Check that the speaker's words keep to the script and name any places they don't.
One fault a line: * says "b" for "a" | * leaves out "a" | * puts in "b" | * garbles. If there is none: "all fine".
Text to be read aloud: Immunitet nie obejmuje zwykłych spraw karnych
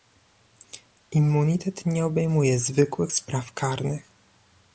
all fine